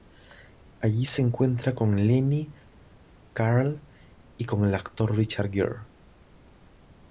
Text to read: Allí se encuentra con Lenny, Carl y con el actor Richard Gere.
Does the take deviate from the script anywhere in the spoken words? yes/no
no